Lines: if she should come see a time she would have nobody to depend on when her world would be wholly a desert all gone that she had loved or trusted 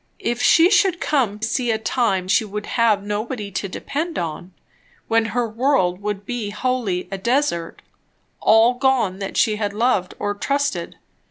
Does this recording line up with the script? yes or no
yes